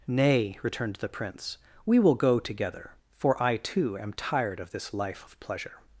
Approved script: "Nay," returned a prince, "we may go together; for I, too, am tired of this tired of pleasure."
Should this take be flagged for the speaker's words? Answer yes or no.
yes